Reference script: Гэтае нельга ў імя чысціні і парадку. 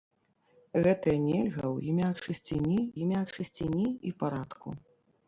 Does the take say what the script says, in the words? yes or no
no